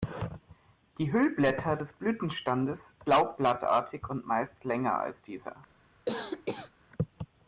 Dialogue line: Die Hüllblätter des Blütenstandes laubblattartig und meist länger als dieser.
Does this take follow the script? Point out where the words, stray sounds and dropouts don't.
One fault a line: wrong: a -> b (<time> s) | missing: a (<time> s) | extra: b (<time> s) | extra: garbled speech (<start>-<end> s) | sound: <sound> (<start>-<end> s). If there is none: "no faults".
sound: cough (6.1-6.7 s)